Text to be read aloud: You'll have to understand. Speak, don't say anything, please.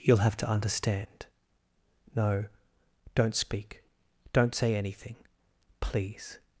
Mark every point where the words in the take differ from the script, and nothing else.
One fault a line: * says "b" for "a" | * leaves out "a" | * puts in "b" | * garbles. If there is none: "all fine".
* puts in "No don't"